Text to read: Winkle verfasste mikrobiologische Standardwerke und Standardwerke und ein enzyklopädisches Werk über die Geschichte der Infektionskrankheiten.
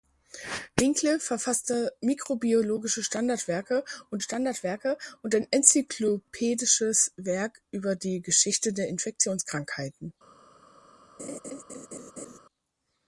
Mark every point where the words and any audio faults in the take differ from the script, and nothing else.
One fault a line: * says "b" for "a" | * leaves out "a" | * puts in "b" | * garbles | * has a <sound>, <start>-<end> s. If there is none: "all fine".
* has a laugh, 11.2-12.4 s